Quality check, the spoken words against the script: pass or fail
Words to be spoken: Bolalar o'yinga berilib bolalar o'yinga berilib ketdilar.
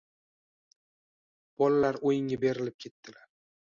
fail